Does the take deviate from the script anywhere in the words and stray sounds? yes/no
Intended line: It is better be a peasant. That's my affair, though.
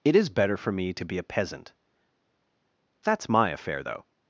yes